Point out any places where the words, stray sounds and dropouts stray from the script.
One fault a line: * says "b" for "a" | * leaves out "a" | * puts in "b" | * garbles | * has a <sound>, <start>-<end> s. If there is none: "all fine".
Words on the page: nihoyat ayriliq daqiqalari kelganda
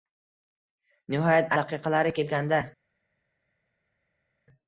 * leaves out "ayriliq"